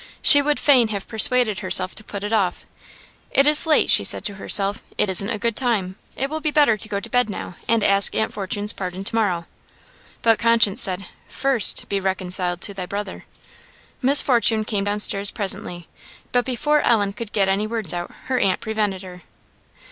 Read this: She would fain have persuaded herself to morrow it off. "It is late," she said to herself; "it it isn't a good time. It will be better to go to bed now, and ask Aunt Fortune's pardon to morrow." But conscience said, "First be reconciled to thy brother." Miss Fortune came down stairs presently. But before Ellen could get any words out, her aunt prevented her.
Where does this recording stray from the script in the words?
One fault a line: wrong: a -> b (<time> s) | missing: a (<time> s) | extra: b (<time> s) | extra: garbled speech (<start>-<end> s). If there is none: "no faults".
wrong: morrow -> put (2.0 s)
missing: it (5.1 s)